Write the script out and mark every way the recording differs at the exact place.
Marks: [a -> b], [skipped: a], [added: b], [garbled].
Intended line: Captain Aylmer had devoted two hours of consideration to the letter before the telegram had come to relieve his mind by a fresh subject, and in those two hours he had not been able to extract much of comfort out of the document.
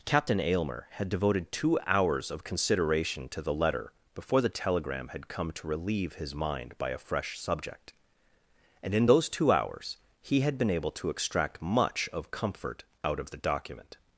Captain Aylmer had devoted two hours of consideration to the letter before the telegram had come to relieve his mind by a fresh subject, and in those two hours he had [skipped: not] been able to extract much of comfort out of the document.